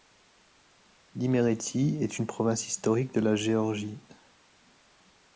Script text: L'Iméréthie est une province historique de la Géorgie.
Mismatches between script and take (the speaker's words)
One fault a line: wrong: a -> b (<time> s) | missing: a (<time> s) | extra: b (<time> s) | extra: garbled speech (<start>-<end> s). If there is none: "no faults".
no faults